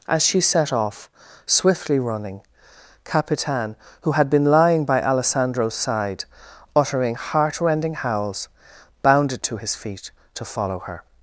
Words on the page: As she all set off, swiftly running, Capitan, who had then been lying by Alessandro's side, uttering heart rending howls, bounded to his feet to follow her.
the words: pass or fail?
fail